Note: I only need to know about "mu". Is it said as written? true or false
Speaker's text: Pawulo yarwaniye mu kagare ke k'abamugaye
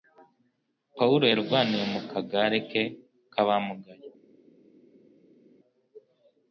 true